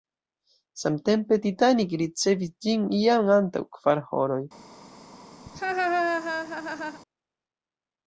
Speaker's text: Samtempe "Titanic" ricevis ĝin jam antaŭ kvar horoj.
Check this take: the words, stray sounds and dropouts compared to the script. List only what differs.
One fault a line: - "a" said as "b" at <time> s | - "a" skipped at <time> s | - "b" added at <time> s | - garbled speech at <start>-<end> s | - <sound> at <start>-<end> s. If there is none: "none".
- laugh at 5.5-7.0 s